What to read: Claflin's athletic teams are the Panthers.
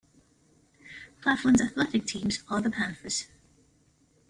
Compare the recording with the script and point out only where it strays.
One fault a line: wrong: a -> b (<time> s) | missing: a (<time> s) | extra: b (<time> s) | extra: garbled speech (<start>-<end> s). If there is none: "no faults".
no faults